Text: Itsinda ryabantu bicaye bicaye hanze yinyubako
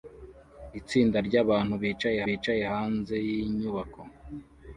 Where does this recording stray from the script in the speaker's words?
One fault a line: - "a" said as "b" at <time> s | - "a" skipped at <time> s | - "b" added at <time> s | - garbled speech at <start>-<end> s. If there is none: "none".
none